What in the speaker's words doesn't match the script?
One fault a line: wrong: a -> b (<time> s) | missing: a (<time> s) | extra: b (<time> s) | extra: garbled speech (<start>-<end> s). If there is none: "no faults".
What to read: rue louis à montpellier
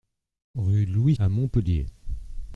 no faults